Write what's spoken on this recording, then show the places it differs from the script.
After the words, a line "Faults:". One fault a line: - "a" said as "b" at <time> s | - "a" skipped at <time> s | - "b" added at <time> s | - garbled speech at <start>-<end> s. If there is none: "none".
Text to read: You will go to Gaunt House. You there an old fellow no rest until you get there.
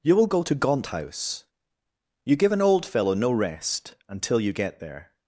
You will go to Gaunt House. You give an old fellow no rest until you get there.
Faults:
- "there" said as "give" at 2.4 s